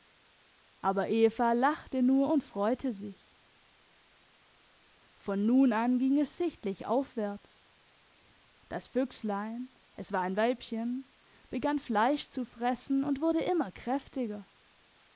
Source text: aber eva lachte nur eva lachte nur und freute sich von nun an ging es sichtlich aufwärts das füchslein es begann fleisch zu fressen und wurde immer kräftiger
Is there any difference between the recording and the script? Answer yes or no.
yes